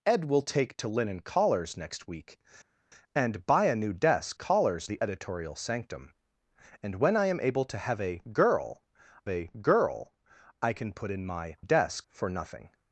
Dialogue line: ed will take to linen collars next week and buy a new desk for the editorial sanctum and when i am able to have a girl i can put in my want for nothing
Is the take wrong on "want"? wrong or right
wrong